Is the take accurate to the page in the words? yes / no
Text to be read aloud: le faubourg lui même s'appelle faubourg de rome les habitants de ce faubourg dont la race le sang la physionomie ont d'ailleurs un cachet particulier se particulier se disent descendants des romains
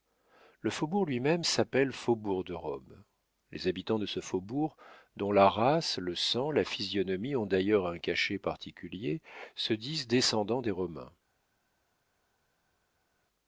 no